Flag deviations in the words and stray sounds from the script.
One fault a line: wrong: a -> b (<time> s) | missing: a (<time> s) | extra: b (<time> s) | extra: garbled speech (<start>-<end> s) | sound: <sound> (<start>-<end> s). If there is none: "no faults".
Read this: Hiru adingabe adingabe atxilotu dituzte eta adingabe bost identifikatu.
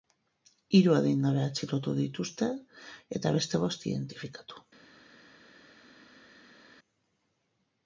missing: adingabe (1.4 s)
wrong: adingabe -> beste (3.4 s)